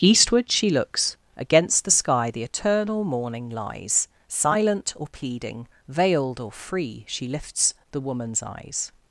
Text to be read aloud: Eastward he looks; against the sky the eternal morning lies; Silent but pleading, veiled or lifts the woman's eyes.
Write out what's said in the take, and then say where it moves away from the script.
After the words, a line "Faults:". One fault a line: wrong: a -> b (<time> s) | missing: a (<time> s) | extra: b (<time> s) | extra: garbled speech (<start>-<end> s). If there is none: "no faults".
Eastward she looks; against the sky the eternal morning lies; Silent or pleading, veiled or free, she lifts the woman's eyes.
Faults:
wrong: he -> she (0.5 s)
wrong: but -> or (5.0 s)
extra: free she (6.5 s)